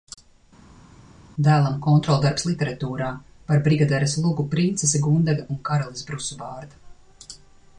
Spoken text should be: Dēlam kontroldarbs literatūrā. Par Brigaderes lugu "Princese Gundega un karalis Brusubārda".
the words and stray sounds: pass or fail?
pass